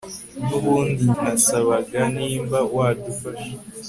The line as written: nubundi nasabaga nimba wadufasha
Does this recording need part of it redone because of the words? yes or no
no